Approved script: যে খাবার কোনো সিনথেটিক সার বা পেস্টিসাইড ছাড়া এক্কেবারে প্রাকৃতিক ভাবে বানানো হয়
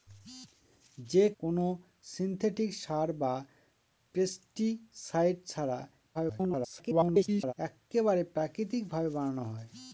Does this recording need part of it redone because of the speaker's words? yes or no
yes